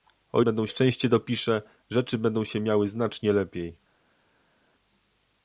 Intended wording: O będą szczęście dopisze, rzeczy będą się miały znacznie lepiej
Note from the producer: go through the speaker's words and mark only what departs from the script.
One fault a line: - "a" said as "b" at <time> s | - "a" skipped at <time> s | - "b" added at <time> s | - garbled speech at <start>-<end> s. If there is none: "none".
none